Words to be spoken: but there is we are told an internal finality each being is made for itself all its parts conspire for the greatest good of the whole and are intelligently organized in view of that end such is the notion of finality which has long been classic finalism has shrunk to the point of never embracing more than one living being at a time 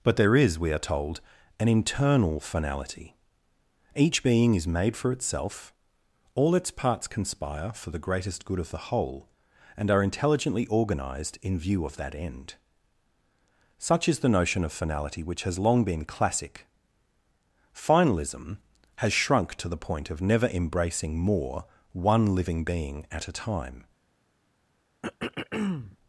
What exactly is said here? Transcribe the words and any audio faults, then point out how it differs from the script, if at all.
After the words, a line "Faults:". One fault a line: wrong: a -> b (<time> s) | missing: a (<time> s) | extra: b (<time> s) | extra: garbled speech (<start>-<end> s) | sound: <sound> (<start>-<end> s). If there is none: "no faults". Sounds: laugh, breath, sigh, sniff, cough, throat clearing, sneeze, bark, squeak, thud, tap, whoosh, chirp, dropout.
but there is we are told an internal finality each being is made for itself all its parts conspire for the greatest good of the whole and are intelligently organized in view of that end such is the notion of finality which has long been classic finalism has shrunk to the point of never embracing more one living being at a time
Faults:
missing: than (21.6 s)
sound: throat clearing (25.0-26.0 s)